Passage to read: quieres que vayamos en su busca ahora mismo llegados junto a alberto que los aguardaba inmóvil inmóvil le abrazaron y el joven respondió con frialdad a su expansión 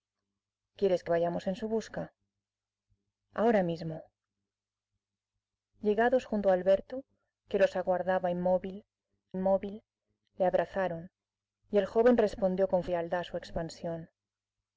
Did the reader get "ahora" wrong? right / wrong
right